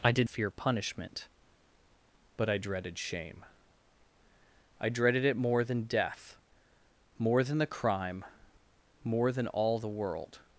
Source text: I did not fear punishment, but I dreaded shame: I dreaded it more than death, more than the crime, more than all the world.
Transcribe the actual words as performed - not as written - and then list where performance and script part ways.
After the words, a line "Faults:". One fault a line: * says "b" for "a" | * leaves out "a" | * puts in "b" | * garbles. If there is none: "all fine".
I did fear punishment, but I dreaded shame: I dreaded it more than death, more than the crime, more than all the world.
Faults:
* leaves out "not"